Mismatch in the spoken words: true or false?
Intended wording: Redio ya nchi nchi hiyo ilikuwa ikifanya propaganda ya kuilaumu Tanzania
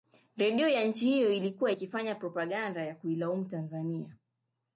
true